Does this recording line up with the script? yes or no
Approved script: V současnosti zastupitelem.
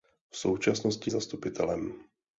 yes